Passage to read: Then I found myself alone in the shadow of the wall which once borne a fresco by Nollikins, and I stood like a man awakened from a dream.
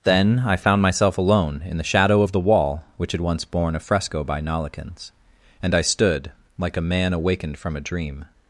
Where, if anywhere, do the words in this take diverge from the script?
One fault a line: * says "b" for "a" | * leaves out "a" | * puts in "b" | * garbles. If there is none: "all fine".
* puts in "had"